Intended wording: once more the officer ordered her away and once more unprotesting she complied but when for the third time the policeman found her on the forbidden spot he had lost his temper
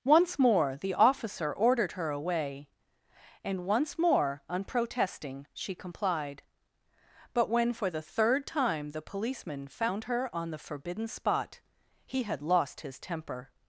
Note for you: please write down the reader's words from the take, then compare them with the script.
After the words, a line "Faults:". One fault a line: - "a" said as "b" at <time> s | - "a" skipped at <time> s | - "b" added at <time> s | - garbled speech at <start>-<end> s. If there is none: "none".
once more the officer ordered her away and once more unprotesting she complied but when for the third time the policeman found her on the forbidden spot he had lost his temper
Faults:
none